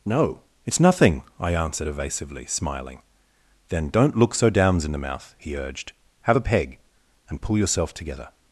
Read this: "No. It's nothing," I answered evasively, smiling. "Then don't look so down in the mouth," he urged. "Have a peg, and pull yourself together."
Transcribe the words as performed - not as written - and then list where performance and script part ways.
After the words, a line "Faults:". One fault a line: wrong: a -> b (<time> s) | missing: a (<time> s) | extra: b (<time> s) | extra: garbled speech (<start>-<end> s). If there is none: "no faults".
"No. It's nothing," I answered evasively, smiling. "Then don't look so downs in the mouth," he urged. "Have a peg, and pull yourself together."
Faults:
wrong: down -> downs (4.5 s)